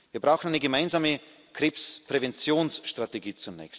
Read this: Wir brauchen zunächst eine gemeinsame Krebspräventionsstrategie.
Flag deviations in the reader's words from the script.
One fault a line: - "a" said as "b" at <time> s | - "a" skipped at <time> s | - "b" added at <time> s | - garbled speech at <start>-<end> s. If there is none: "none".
none